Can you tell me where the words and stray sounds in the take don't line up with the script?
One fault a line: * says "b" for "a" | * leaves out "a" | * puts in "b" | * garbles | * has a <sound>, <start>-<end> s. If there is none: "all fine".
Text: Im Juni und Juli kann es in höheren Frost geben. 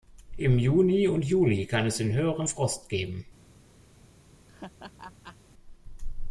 * has a laugh, 4.5-5.4 s